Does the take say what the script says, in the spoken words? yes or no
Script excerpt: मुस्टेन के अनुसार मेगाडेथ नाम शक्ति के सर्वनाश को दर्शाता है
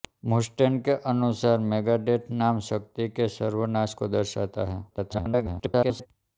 no